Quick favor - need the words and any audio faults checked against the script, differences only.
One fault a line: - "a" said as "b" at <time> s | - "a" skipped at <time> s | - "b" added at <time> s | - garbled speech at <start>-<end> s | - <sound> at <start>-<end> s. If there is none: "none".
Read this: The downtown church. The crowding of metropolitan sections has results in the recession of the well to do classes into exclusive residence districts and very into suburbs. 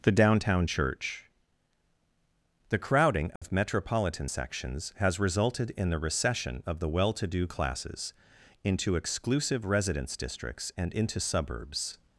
- dropout at 3.4-3.4 s
- "results" said as "resulted" at 5.2 s
- "very" skipped at 10.9 s